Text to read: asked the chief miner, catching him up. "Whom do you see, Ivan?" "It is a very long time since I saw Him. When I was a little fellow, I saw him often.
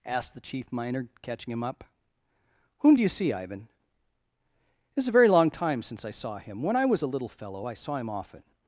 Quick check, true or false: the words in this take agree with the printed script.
true